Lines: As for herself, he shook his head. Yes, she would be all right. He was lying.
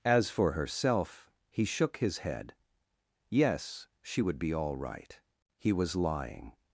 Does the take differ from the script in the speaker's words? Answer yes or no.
no